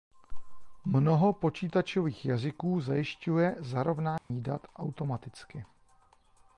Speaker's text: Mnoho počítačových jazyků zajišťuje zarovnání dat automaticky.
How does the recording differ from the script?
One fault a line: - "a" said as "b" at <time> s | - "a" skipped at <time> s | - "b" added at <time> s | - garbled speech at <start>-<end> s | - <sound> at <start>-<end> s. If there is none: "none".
- dropout at 4.2-4.3 s